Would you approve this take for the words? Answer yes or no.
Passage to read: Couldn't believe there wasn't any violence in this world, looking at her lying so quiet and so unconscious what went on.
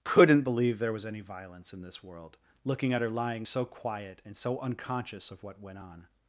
no